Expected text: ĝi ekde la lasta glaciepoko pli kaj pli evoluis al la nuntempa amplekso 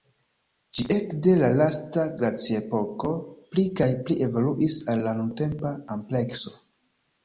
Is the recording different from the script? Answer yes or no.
no